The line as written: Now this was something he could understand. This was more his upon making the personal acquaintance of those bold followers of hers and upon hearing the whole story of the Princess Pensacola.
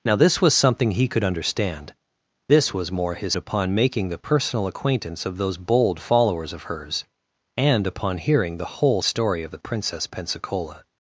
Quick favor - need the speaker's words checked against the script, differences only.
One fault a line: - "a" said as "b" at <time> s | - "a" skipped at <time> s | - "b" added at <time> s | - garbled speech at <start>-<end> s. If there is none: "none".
none